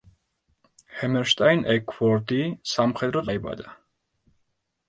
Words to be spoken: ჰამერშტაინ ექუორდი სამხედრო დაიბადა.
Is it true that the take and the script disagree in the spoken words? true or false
false